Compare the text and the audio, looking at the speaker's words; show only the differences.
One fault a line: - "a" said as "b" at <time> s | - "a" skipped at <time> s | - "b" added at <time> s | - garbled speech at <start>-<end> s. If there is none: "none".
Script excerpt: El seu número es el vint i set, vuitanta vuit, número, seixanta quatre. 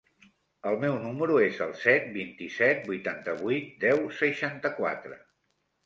- "seu" said as "meu" at 0.8 s
- "set" added at 1.8 s
- "número" said as "deu" at 3.9 s